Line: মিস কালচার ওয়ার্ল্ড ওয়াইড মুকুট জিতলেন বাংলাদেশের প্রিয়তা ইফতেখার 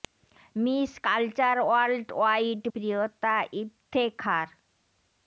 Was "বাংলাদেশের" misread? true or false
true